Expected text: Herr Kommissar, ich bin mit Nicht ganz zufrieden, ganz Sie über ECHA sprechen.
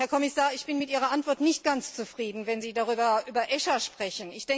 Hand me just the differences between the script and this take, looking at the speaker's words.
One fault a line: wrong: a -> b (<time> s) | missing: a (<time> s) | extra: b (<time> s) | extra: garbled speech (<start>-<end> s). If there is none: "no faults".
extra: Ihrer Antwort (0.9 s)
wrong: ganz -> wenn (2.5 s)